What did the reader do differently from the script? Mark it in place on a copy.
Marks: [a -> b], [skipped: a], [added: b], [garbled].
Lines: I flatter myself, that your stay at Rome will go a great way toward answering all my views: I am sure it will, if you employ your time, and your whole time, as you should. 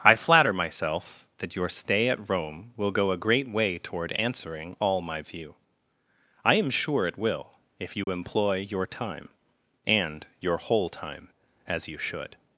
I flatter myself, that your stay at Rome will go a great way toward answering all my [views: -> view] I am sure it will, if you employ your time, and your whole time, as you should.